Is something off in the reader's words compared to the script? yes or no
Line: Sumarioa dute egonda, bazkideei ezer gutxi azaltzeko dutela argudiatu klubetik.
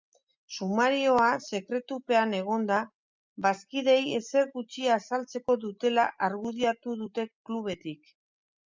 yes